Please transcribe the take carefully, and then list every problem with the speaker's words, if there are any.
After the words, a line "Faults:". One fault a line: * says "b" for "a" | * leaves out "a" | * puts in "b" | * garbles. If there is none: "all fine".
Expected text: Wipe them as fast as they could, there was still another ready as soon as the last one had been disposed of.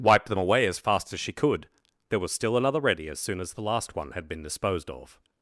Wipe them away as fast as she could, there was still another ready as soon as the last one had been disposed of.
Faults:
* puts in "away"
* says "she" for "they"